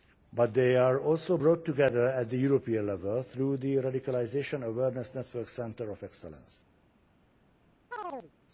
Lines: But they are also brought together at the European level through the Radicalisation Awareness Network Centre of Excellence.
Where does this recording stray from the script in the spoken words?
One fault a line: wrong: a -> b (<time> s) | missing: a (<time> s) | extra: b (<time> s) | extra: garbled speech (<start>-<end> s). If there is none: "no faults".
no faults